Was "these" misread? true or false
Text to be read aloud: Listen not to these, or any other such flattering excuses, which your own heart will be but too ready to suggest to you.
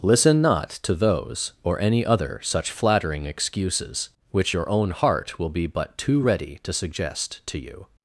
true